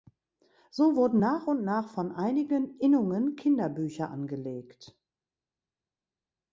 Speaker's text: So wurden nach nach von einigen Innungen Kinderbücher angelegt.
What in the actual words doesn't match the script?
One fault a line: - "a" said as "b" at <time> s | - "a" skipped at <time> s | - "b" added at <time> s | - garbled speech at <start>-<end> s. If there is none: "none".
- "und" added at 1.5 s